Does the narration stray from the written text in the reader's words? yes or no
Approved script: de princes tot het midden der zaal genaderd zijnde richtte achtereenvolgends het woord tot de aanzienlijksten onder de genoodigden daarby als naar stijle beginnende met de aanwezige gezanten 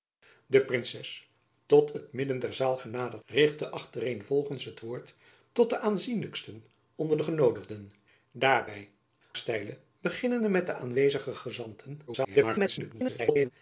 yes